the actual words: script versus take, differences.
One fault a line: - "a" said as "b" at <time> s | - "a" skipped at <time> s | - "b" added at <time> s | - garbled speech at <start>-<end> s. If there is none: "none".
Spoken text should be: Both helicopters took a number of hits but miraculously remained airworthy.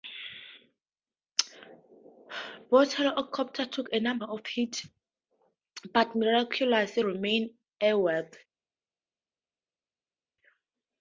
none